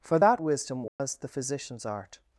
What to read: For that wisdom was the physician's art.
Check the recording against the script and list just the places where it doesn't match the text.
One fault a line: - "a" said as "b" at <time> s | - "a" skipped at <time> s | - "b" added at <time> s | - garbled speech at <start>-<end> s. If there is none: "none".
none